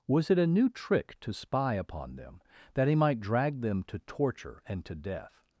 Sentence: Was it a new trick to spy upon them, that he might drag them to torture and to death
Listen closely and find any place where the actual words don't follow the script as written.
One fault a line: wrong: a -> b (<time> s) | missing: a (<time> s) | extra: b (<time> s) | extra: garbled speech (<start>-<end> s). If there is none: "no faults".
no faults